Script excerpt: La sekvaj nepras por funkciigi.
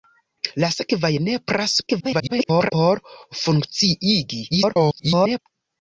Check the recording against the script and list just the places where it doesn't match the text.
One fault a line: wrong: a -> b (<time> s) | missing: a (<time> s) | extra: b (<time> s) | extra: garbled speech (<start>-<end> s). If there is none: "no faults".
extra: garbled speech (1.9-2.7 s)
extra: garbled speech (4.5-5.4 s)